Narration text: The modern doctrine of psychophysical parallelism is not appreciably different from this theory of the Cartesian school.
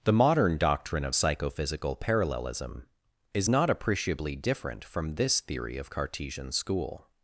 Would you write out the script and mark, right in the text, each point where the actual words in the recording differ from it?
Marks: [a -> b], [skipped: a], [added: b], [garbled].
The modern doctrine of psychophysical parallelism is not appreciably different from this theory of [skipped: the] Cartesian school.